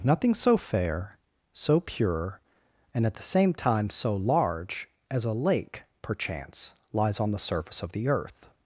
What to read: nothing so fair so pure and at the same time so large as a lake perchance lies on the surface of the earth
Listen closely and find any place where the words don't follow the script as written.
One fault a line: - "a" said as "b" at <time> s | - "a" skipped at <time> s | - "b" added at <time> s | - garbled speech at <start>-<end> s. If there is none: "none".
none